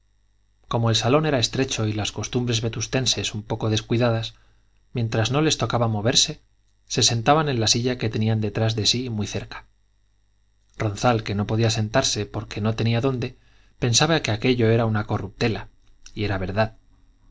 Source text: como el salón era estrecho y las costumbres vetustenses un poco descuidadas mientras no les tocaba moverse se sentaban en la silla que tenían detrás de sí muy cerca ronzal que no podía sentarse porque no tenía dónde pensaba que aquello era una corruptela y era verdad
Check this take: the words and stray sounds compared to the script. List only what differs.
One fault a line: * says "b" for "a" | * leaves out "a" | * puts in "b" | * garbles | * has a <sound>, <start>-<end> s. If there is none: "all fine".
all fine